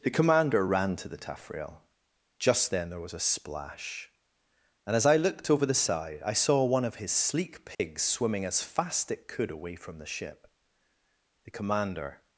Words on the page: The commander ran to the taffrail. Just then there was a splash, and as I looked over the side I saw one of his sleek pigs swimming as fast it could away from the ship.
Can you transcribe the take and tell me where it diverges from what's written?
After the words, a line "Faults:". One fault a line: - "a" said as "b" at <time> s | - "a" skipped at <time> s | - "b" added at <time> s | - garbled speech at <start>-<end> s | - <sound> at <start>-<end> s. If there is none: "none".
The commander ran to the taffrail. Just then there was a splash, and as I looked over the side I saw one of his sleek pigs swimming as fast it could away from the ship. The commander
Faults:
- dropout at 7.7-7.8 s
- "The commander" added at 11.4 s